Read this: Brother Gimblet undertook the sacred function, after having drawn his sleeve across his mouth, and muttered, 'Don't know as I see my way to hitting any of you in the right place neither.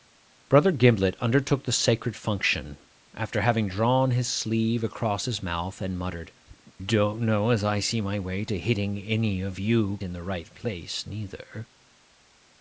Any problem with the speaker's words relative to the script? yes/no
no